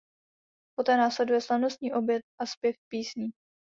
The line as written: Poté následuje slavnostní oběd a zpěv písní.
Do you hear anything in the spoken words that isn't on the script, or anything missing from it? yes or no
no